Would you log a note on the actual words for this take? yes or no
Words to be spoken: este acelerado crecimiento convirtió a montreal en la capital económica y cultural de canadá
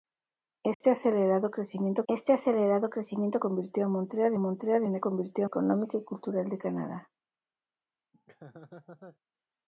yes